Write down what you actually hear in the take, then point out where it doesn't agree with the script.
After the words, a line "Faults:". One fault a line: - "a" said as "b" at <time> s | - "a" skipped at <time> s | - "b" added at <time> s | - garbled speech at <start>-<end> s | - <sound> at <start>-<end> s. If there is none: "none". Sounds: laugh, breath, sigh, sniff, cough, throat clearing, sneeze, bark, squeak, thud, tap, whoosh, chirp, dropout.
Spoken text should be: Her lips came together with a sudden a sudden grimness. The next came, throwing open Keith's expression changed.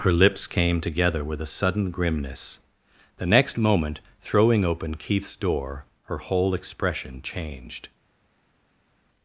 Her lips came together with a sudden grimness. The next moment, throwing open Keith's door, her whole expression changed.
Faults:
- "a sudden" skipped at 1.9 s
- "came" said as "moment" at 3.5 s
- "door her whole" added at 5.3 s